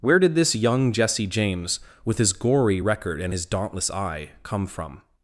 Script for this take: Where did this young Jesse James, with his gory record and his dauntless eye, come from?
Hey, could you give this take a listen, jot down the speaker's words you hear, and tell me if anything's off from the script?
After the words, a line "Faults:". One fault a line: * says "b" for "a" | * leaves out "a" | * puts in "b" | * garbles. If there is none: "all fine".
Where did this young Jesse James, with his gory record and his dauntless eye, come from?
Faults:
all fine